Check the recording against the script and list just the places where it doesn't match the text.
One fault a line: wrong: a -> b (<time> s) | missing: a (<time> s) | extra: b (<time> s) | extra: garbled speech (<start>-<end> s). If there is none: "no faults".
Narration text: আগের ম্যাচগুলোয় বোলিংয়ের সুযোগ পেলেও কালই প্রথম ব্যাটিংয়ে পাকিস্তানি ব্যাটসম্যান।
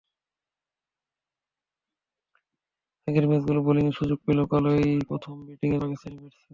no faults